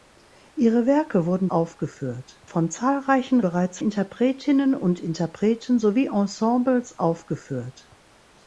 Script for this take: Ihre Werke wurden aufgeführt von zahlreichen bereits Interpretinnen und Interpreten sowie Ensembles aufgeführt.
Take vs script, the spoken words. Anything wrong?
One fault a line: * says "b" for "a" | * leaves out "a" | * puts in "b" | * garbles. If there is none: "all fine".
all fine